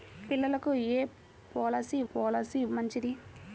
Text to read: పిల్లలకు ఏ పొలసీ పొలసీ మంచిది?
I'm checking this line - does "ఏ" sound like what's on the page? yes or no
yes